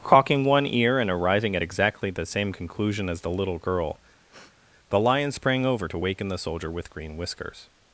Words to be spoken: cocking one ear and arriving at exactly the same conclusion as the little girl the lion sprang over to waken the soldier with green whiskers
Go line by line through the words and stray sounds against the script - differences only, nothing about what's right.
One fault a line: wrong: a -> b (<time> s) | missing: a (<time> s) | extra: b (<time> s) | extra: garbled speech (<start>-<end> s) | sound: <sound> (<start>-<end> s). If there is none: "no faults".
sound: sniff (4.3-4.6 s)